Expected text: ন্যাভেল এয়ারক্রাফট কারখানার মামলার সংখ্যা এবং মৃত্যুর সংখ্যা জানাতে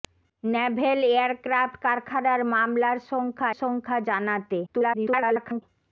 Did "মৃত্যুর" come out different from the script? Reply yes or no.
yes